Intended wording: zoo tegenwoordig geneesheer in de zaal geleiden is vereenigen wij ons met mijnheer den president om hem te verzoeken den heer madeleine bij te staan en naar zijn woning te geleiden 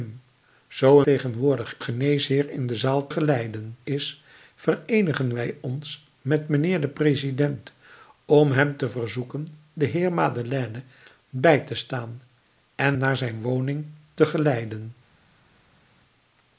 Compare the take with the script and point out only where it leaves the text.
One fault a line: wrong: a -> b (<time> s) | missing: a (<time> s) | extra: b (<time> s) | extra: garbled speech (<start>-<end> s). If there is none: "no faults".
no faults